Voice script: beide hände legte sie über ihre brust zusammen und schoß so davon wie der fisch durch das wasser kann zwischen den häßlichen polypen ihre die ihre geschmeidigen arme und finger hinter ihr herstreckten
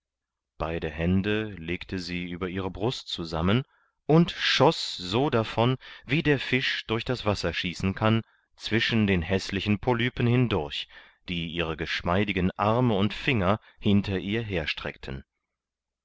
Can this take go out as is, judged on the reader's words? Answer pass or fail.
fail